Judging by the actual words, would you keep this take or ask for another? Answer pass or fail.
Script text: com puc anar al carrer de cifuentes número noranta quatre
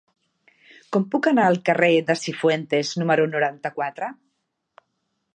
pass